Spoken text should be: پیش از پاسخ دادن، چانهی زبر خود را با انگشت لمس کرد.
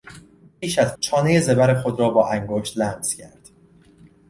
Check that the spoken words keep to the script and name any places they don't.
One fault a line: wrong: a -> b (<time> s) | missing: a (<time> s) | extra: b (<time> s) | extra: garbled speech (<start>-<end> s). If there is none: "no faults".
missing: پاسخ دادن (0.9 s)